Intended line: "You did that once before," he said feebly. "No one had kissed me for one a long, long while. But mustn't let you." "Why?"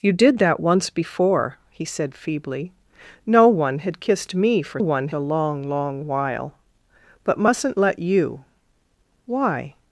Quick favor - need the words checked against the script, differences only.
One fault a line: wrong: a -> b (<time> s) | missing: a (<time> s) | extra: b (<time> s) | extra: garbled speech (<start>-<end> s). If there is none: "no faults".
no faults